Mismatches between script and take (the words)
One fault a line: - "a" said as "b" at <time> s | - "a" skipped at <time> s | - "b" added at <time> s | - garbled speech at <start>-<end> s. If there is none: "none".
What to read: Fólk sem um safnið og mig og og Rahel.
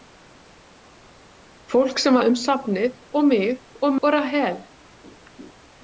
none